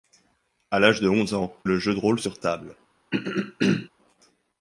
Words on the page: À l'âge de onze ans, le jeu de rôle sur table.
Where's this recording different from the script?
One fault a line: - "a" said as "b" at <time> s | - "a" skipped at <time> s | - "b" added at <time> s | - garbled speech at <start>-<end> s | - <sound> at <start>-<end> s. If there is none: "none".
- throat clearing at 3.1-3.9 s